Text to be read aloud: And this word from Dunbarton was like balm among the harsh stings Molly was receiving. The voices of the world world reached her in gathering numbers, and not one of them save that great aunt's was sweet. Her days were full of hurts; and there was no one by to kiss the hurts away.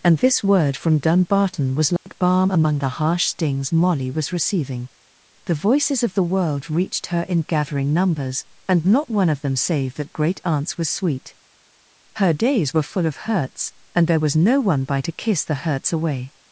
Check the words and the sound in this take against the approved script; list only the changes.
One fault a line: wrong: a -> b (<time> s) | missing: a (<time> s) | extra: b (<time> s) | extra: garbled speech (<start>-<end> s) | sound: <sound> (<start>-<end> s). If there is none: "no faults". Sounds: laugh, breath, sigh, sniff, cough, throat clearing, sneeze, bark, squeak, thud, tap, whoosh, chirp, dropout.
sound: dropout (2.0-2.1 s)
missing: world (6.7 s)